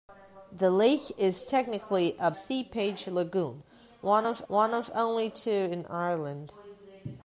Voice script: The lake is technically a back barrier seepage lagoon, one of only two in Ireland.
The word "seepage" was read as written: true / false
false